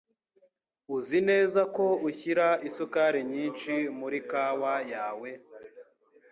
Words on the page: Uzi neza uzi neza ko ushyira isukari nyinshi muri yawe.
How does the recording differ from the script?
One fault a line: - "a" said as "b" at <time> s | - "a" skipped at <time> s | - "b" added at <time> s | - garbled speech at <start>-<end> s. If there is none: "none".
- "uzi neza" skipped at 1.6 s
- "kawa" added at 4.3 s